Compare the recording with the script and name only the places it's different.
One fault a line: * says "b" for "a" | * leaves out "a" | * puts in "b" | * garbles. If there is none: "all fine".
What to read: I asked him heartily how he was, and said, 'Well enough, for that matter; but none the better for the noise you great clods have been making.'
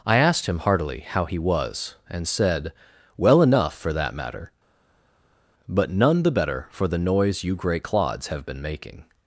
all fine